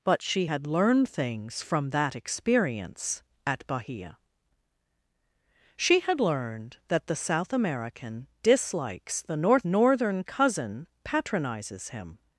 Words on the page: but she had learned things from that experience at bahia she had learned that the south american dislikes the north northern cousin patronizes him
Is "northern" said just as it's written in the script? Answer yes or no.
yes